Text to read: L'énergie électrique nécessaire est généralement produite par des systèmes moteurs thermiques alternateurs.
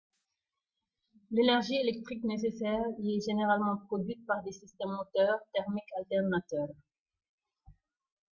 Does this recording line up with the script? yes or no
no